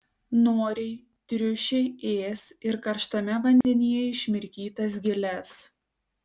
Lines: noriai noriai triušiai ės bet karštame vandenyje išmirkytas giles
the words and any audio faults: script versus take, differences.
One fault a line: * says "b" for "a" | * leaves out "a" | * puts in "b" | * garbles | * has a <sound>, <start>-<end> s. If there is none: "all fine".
* leaves out "noriai"
* says "ir" for "bet"
* has a dropout, 3.6-3.6 s